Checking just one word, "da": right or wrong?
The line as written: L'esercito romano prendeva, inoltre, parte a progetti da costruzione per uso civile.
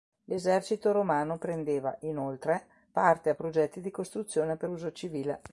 wrong